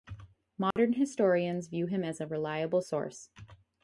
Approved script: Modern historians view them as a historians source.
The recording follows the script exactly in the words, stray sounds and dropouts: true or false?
false